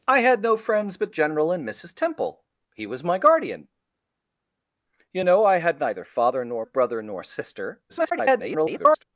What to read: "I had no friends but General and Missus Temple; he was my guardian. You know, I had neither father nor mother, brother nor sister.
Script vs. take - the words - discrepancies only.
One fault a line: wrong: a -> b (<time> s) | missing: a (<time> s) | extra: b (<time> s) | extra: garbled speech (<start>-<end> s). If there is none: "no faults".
missing: mother (6.6 s)
extra: garbled speech (7.9-9.0 s)